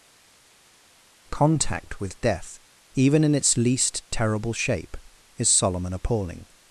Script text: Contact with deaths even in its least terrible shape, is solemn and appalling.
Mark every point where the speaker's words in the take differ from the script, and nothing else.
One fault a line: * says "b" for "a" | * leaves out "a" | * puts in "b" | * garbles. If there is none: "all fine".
* says "death" for "deaths"